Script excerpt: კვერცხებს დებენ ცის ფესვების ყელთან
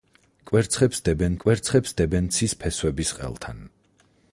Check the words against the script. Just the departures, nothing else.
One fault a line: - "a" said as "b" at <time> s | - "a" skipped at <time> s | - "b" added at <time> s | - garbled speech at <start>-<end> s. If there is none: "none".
- "კვერცხებს დებენ" added at 1.4 s